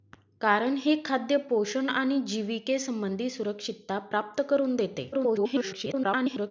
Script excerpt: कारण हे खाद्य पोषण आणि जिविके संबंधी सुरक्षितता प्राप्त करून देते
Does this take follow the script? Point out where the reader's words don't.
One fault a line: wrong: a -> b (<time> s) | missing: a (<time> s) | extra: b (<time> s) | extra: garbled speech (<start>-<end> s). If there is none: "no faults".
extra: garbled speech (5.1-6.5 s)